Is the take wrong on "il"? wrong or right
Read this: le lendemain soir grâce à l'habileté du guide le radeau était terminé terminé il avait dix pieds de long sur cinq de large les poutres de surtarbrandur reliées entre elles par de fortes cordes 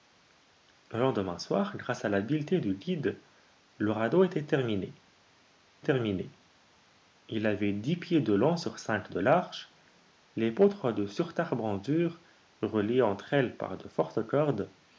right